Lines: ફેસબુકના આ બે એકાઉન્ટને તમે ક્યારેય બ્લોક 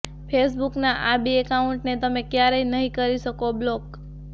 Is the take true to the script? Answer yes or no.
no